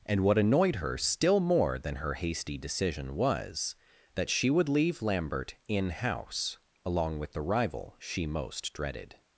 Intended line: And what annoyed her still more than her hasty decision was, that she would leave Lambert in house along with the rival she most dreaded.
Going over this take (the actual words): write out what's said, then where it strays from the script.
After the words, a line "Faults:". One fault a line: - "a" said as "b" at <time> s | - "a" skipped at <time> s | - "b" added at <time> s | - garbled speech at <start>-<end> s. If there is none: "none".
And what annoyed her still more than her hasty decision was, that she would leave Lambert in house along with the rival she most dreaded.
Faults:
none